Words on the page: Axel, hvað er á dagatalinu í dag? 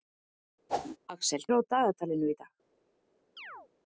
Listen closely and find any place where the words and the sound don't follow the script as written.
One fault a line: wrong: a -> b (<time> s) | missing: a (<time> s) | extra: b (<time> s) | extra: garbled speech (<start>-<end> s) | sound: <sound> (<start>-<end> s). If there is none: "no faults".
sound: whoosh (0.7-1.0 s)
missing: hvað (1.4 s)
sound: chirp (3.4-3.7 s)